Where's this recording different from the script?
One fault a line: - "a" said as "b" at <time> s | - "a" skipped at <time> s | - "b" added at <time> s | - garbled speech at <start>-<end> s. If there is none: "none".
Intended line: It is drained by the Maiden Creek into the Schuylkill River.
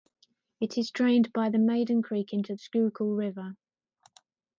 - "the" skipped at 2.5 s